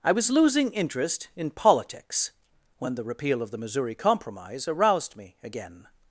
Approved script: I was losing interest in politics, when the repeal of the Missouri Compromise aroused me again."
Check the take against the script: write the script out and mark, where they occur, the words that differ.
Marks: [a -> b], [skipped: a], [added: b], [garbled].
I was losing interest in politics, when the repeal of the Missouri Compromise aroused me again."